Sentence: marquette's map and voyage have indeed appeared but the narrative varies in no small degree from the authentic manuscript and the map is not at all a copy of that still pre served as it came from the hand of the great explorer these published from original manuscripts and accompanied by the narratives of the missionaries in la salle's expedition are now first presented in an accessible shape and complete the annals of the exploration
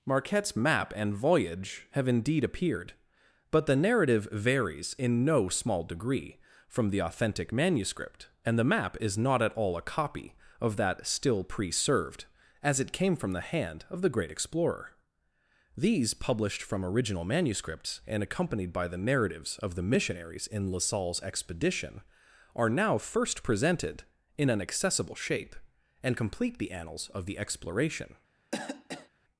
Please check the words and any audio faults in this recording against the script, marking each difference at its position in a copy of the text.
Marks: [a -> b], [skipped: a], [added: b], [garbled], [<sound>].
marquette's map and voyage have indeed appeared but the narrative varies in no small degree from the authentic manuscript and the map is not at all a copy of that still pre served as it came from the hand of the great explorer these published from original manuscripts and accompanied by the narratives of the missionaries in la salle's expedition are now first presented in an accessible shape and complete the annals of the exploration [cough]